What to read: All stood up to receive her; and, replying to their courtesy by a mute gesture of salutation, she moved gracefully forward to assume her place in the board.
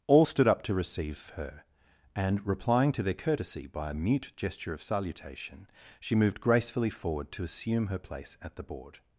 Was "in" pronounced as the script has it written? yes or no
no